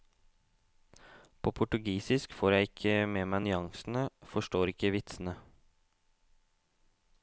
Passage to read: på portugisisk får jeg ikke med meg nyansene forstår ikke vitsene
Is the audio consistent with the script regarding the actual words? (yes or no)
yes